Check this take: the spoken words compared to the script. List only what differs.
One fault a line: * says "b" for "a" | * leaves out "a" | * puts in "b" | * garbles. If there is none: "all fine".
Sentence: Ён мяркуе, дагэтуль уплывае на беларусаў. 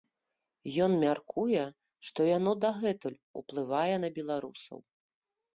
* puts in "што яно"